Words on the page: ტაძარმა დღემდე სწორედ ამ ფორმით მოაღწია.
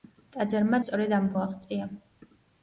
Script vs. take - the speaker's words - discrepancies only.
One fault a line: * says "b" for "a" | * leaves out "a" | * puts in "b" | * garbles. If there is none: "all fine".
* leaves out "დღემდე"
* leaves out "ფორმით"